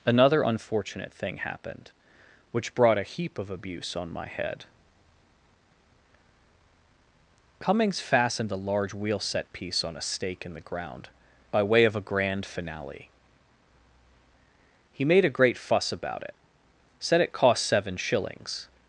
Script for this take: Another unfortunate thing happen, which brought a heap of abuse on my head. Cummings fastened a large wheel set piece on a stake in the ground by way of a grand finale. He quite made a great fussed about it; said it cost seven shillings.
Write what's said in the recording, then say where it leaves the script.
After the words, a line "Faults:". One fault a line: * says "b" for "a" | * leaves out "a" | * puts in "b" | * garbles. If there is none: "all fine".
Another unfortunate thing happened, which brought a heap of abuse on my head. Cummings fastened a large wheel set piece on a stake in the ground by way of a grand finale. He made a great fuss about it; said it cost seven shillings.
Faults:
* says "happened" for "happen"
* leaves out "quite"
* says "fuss" for "fussed"